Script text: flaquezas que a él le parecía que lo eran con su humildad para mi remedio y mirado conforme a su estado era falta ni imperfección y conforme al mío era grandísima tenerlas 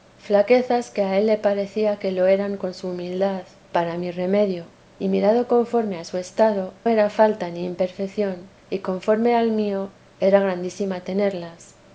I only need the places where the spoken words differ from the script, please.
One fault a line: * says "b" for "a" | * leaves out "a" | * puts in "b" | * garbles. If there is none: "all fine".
all fine